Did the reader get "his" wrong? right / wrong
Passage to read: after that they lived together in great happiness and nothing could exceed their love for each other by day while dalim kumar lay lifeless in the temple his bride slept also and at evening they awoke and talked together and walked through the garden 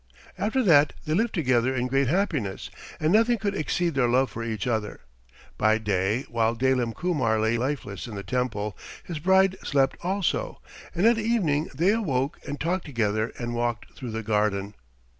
right